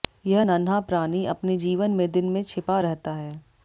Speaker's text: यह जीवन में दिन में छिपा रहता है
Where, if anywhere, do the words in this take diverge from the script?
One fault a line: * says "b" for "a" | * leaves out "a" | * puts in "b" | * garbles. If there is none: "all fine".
* puts in "नन्हा प्राणी अपने"